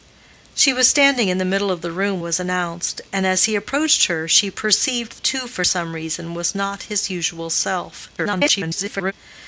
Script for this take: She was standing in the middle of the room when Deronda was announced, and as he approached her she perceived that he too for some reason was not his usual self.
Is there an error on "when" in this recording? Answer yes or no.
yes